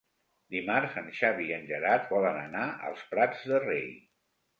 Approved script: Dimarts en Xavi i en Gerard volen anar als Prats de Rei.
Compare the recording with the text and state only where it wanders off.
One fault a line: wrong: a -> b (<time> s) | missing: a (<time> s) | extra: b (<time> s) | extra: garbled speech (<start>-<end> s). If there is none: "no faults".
no faults